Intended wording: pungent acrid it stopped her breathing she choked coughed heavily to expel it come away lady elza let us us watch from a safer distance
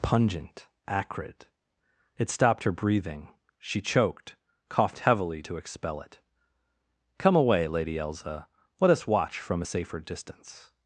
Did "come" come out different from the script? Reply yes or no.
no